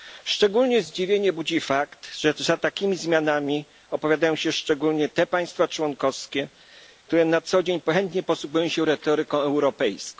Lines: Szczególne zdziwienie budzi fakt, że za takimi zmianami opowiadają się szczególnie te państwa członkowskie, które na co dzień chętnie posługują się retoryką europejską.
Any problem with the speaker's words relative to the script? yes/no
no